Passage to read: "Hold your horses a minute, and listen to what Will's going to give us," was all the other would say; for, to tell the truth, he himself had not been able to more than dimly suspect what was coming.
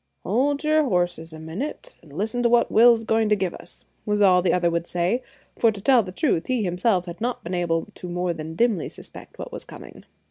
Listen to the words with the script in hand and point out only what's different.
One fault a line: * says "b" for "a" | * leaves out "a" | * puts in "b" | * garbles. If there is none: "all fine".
all fine